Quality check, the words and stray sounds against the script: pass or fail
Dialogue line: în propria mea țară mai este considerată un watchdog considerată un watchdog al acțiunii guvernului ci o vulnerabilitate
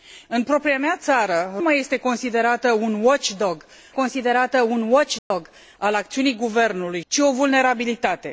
fail